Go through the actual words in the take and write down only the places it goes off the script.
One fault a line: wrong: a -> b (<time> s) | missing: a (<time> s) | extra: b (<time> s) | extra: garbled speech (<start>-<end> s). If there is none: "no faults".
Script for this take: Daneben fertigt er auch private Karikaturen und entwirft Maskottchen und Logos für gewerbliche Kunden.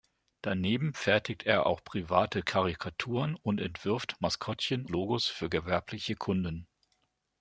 missing: und (4.9 s)